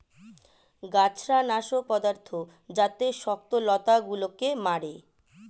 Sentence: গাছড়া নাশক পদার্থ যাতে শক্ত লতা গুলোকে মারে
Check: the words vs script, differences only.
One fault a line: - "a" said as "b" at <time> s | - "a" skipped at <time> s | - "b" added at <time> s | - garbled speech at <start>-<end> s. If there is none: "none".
none